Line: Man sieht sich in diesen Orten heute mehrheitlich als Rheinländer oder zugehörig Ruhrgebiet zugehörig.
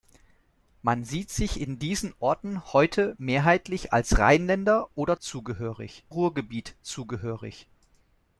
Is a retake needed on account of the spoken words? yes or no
no